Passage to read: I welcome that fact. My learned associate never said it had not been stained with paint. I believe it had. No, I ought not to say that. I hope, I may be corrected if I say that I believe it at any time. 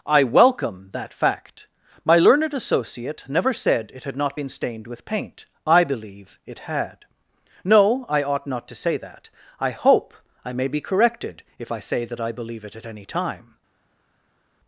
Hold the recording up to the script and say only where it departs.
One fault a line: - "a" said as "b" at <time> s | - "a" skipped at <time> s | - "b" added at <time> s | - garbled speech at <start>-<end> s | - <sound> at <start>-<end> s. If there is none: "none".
none